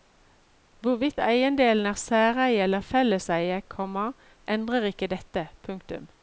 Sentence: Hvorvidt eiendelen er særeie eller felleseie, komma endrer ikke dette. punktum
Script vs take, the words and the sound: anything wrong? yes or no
no